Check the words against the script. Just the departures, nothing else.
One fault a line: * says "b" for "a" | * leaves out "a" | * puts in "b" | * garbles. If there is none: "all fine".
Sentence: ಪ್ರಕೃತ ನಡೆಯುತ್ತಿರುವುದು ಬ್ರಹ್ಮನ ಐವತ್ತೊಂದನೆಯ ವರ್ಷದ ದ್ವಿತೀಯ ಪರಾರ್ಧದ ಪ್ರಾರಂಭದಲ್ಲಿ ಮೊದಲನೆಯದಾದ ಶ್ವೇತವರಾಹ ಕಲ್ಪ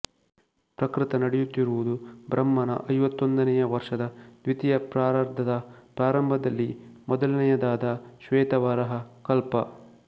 all fine